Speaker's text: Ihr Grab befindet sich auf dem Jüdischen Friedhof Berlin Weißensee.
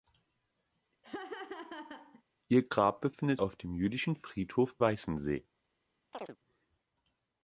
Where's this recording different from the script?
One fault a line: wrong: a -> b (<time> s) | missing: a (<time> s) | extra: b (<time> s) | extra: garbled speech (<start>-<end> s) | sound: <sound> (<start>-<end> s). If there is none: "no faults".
sound: laugh (1.0-2.2 s)
missing: sich (3.4 s)
missing: Berlin (4.8 s)
sound: chirp (6.1-6.4 s)